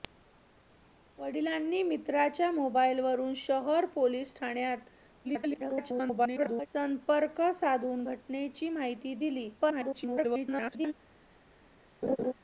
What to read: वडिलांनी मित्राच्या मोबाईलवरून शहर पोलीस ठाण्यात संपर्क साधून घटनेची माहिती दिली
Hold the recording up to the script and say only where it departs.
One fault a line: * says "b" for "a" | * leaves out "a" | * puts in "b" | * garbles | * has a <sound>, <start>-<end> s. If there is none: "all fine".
* garbles
* garbles
* has a laugh, 12.0-12.3 s